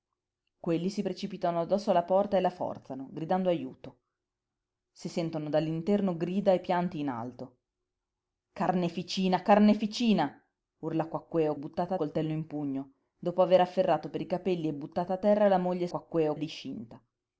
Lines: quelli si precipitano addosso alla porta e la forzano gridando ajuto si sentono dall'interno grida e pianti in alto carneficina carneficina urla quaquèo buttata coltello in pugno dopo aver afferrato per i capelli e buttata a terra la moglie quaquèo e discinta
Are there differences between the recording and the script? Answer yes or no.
no